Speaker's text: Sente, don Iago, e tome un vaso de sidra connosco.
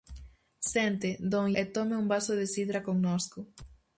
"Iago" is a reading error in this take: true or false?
true